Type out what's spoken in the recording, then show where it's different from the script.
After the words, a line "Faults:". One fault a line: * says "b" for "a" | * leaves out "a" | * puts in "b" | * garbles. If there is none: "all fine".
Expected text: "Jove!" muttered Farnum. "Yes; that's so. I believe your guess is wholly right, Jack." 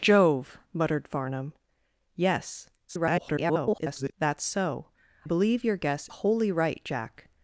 "Jove!" muttered Farnum. "Yes; [garbled] that's so. believe your guess wholly right, Jack."
Faults:
* garbles
* leaves out "I"
* leaves out "is"